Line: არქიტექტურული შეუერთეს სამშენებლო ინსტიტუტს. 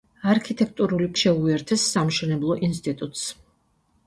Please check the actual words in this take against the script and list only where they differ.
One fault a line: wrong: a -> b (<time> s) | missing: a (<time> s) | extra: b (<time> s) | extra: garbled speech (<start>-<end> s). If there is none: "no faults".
no faults